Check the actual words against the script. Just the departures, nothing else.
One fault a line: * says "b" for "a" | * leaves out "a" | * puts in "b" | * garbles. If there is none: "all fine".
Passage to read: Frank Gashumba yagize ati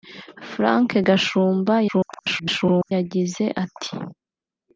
* garbles